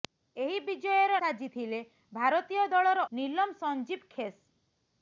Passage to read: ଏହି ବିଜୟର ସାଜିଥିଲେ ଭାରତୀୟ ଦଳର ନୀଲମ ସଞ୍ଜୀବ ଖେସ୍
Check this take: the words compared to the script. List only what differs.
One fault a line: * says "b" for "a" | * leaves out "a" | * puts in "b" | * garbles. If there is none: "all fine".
all fine